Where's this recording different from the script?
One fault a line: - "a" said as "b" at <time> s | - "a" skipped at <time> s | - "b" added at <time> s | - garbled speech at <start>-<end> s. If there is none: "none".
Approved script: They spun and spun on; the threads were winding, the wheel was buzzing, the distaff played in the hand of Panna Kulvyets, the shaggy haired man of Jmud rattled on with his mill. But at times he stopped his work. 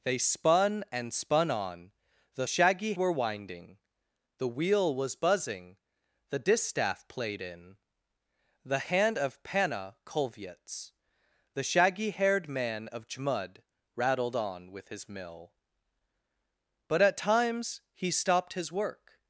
- "threads" said as "shaggy" at 2.5 s